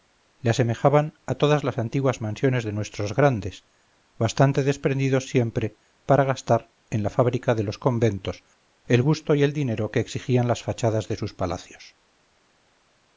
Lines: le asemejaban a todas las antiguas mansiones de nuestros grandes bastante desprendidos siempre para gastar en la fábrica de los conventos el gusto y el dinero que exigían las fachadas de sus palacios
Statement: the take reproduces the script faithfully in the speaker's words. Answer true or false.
true